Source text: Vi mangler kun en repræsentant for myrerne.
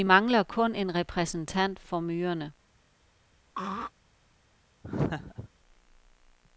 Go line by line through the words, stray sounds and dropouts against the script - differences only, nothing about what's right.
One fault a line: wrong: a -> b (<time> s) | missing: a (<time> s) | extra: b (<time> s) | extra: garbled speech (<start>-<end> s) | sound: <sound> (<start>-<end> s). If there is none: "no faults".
sound: throat clearing (3.5-3.9 s)
sound: laugh (4.8-5.5 s)